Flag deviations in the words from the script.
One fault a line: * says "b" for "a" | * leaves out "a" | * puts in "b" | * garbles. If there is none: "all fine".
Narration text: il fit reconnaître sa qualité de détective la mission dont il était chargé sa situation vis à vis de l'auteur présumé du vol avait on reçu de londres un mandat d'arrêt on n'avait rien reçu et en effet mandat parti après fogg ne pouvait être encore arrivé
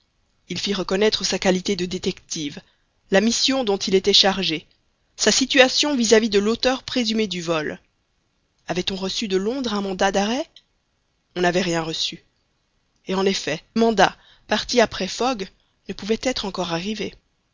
all fine